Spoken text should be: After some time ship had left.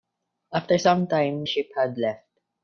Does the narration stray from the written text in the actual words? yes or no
no